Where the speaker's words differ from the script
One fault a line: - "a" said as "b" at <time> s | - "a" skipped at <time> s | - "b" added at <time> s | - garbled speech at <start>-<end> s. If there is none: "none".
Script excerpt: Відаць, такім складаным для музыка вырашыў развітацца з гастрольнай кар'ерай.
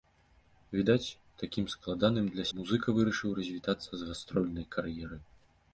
none